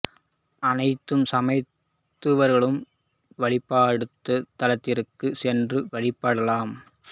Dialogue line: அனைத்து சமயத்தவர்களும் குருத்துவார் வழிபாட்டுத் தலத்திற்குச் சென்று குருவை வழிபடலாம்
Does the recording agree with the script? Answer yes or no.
no